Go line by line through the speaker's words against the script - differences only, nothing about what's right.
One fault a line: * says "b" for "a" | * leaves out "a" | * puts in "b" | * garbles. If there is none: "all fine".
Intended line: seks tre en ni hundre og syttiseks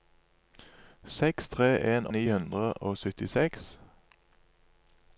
all fine